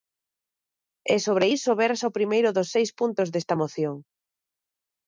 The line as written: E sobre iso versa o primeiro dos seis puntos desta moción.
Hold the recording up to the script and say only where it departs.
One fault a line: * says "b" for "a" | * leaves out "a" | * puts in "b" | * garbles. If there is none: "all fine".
all fine